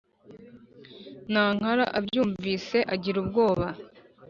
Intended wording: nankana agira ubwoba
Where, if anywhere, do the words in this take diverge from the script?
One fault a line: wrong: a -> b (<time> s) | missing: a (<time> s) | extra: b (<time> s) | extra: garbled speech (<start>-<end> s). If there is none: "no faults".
extra: abyumvise (2.0 s)